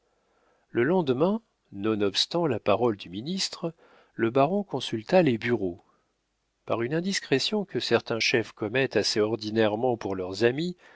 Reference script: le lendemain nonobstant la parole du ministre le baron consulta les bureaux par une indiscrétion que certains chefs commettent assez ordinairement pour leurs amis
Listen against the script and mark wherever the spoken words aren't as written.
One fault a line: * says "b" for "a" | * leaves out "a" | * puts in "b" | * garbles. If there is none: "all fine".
all fine